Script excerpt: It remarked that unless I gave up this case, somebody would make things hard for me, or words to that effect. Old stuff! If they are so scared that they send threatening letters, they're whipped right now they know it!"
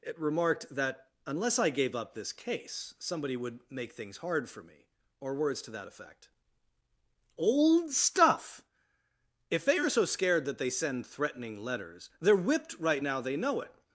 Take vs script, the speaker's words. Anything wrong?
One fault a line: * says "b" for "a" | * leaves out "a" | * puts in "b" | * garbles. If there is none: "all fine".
all fine